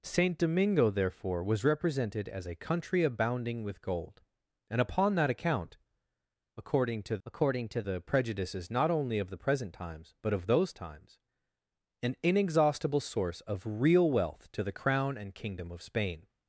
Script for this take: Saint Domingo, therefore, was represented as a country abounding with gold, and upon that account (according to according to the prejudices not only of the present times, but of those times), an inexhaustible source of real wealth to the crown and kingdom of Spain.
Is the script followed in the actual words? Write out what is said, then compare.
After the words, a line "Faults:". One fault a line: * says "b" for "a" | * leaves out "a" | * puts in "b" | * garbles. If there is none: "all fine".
Saint Domingo, therefore, was represented as a country abounding with gold, and upon that account (according to according to the prejudices not only of the present times, but of those times), an inexhaustible source of real wealth to the crown and kingdom of Spain.
Faults:
all fine